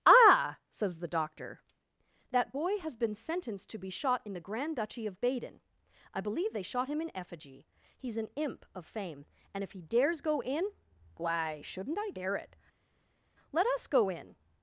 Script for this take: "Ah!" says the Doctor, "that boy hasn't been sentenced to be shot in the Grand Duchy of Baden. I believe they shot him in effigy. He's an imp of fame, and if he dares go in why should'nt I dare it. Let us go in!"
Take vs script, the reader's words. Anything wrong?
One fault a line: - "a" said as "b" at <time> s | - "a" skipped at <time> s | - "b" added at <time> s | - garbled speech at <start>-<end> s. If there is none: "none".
- "hasn't" said as "has" at 2.8 s